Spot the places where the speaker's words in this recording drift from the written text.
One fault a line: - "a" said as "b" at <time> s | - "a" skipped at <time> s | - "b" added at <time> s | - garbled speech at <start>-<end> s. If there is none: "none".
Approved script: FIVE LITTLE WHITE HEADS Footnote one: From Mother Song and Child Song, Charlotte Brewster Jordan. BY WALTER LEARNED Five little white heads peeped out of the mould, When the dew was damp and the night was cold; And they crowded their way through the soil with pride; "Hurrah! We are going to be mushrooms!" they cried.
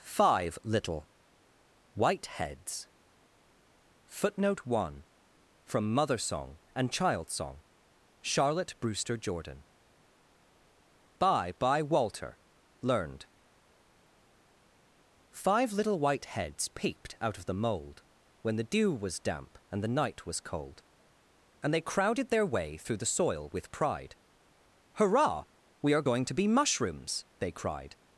- "BY" added at 11.6 s